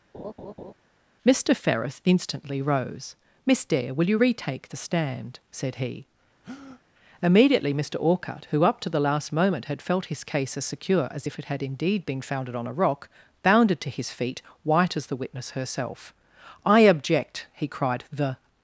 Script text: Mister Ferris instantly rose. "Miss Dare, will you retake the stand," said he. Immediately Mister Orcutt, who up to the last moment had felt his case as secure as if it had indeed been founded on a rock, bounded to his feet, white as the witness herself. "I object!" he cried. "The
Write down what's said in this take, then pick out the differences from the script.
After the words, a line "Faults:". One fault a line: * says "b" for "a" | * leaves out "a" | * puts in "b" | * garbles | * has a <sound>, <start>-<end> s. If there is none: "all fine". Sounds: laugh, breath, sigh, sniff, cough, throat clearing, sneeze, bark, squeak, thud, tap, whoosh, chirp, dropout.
Mister Ferris instantly rose. "Miss Dare, will you retake the stand," said he. Immediately Mister Orcutt, who up to the last moment had felt his case as secure as if it had indeed been founded on a rock, bounded to his feet, white as the witness herself. "I object!" he cried. "The
Faults:
* has a laugh, 0.1-0.7 s
* has a breath, 6.4-6.8 s